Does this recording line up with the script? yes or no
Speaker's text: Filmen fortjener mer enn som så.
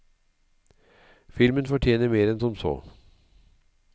yes